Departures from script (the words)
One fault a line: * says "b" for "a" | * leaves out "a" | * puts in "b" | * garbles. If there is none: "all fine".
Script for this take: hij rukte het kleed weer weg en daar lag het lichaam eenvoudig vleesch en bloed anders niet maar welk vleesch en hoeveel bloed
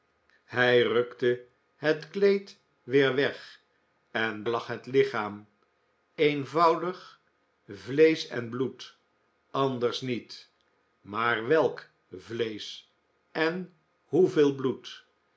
* leaves out "daar"